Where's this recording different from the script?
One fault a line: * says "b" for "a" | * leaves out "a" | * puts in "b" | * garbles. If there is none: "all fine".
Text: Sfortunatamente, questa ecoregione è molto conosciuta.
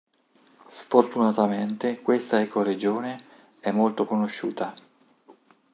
all fine